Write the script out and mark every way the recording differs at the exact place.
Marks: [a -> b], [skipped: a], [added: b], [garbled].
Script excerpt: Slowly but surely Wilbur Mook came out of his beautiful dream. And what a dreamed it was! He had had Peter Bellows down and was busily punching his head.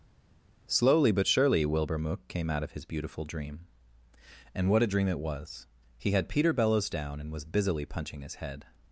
Slowly but surely Wilbur Mook came out of his beautiful dream. And what a [dreamed -> dream] it was! He had [skipped: had] Peter Bellows down and was busily punching his head.